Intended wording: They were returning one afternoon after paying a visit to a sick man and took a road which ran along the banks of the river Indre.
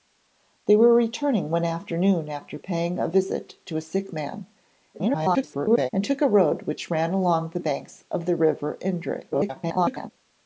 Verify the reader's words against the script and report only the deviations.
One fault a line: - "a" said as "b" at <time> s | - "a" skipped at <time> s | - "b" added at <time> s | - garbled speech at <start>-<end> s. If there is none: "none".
- garbled speech at 4.9-5.9 s
- garbled speech at 9.3-10.1 s